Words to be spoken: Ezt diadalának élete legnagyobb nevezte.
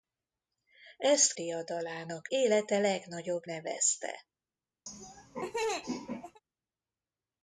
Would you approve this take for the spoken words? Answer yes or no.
yes